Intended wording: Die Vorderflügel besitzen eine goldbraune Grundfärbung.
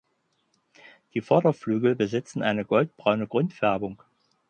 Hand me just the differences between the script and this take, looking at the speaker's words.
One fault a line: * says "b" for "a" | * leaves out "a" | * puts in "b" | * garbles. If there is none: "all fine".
all fine